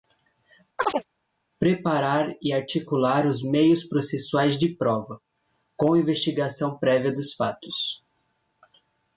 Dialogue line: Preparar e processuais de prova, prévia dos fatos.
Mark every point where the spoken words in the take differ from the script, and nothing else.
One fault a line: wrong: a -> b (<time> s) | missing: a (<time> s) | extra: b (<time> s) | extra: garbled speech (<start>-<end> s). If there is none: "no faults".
extra: articular os meios (2.5 s)
extra: com investigação (5.8 s)